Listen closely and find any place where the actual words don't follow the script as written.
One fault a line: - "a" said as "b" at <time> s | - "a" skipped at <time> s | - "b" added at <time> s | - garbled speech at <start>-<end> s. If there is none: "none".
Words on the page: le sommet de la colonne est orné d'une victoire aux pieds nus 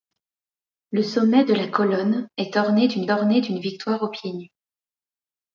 - "orné d'une" added at 3.1 s